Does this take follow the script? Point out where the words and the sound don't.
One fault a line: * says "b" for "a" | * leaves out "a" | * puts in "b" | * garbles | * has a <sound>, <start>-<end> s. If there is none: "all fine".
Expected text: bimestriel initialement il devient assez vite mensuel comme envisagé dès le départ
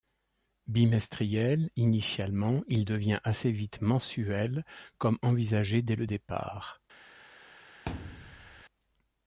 * has a thud, 7.9-8.6 s